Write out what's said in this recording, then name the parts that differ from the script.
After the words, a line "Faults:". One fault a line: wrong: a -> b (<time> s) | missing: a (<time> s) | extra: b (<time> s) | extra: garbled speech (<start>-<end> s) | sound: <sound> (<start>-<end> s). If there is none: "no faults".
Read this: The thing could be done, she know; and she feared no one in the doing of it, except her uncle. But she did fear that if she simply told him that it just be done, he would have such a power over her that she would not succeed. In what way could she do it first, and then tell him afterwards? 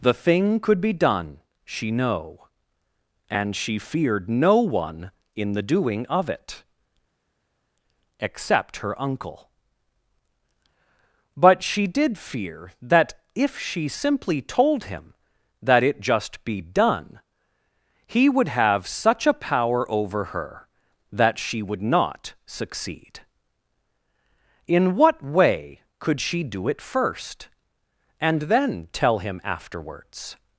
The thing could be done, she know; and she feared no one in the doing of it, except her uncle. But she did fear that if she simply told him that it just be done, he would have such a power over her that she would not succeed. In what way could she do it first, and then tell him afterwards?
Faults:
no faults